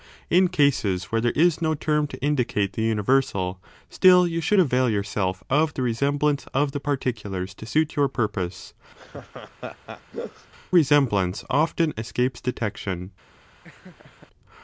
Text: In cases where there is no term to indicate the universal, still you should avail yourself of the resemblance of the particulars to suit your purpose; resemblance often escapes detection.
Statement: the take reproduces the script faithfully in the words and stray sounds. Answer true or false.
false